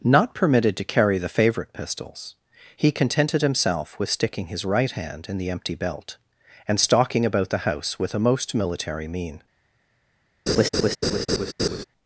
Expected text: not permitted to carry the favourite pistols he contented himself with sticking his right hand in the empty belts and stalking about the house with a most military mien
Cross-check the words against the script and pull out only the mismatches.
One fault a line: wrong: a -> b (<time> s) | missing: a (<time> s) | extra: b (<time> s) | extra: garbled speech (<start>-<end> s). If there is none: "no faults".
wrong: belts -> belt (5.7 s)